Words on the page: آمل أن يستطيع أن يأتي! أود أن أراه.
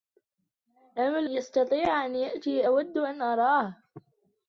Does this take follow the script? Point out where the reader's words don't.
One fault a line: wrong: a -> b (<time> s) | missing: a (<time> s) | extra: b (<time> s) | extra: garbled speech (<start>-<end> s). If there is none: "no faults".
missing: أن (1.3 s)